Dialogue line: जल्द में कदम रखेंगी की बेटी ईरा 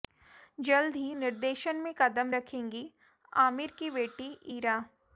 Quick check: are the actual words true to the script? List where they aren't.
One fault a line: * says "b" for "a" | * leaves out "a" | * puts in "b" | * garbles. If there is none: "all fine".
* puts in "ही निर्देशन"
* puts in "आमिर"